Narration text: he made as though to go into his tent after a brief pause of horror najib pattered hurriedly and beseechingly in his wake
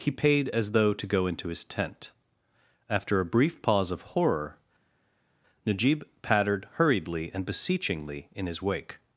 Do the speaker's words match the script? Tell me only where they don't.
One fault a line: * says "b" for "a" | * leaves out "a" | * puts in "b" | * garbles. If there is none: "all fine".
* says "paid" for "made"